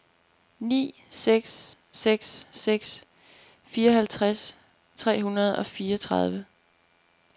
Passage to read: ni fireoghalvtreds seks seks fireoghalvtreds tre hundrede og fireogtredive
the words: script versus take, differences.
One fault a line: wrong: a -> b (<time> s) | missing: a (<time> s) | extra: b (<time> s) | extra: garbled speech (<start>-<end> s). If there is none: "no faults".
wrong: fireoghalvtreds -> seks (1.1 s)